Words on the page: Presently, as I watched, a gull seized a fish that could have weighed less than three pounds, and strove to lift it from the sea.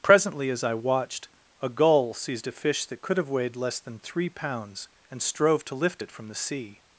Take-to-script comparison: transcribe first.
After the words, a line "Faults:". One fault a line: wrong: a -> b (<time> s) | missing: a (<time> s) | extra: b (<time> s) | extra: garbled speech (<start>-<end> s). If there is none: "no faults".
Presently, as I watched, a gull seized a fish that could have weighed less than three pounds, and strove to lift it from the sea.
Faults:
no faults